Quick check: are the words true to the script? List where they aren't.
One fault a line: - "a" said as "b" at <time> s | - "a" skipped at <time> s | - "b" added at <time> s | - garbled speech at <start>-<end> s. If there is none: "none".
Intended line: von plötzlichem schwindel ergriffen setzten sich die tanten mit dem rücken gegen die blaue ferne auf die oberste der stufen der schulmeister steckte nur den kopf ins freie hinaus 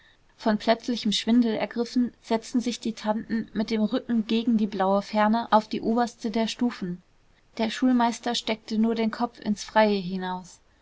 none